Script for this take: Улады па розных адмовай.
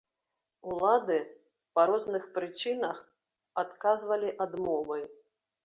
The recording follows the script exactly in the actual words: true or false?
false